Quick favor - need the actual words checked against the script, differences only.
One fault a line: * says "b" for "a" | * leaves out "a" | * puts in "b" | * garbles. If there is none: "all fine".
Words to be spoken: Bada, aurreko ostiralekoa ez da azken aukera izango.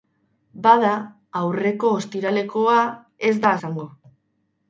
* leaves out "azken aukera"